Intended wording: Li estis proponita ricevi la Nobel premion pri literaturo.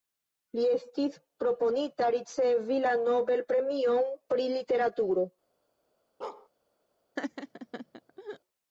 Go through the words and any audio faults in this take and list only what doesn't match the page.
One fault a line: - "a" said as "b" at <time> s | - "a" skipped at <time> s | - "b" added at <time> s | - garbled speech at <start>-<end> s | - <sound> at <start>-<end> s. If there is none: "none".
- bark at 6.2-6.5 s
- laugh at 7.2-8.4 s